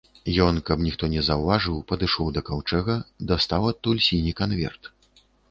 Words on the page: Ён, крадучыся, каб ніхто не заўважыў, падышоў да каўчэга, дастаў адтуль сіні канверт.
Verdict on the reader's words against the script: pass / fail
fail